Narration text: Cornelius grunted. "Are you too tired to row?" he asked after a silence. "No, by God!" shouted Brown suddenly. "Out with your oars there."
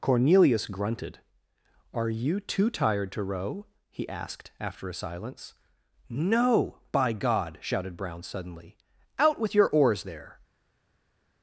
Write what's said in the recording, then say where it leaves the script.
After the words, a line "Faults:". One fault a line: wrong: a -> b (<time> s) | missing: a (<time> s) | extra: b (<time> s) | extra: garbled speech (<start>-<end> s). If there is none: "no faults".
Cornelius grunted. "Are you too tired to row?" he asked after a silence. "No, by God!" shouted Brown suddenly. "Out with your oars there."
Faults:
no faults